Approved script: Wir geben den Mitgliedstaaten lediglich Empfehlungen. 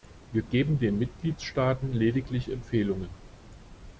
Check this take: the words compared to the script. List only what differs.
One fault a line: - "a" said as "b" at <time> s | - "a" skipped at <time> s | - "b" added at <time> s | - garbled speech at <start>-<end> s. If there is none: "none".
none